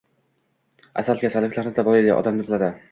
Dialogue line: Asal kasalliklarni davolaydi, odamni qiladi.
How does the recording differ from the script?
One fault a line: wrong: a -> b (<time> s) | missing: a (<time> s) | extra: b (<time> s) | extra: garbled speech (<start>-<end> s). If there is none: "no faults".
no faults